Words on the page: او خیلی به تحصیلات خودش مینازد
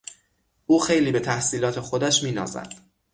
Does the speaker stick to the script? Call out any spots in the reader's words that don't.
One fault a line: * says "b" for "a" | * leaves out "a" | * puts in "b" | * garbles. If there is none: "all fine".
all fine